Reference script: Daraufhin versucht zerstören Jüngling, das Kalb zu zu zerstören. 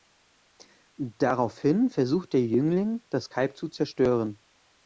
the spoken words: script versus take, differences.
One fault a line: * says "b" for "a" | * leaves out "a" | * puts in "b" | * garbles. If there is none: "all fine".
* says "der" for "zerstören"
* leaves out "zu"